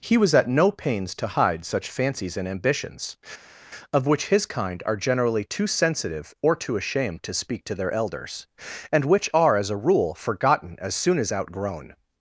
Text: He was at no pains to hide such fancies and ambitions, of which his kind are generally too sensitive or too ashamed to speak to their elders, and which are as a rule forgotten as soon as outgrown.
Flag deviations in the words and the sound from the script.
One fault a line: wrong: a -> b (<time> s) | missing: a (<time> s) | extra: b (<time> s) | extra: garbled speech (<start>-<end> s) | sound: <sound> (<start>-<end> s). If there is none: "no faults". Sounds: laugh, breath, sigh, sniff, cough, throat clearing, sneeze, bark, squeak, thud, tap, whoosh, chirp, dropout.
no faults